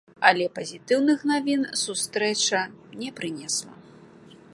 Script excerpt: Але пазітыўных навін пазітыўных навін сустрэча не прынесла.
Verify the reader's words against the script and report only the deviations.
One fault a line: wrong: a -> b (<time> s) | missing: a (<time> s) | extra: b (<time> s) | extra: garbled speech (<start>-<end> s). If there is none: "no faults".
missing: пазітыўных навін (1.6 s)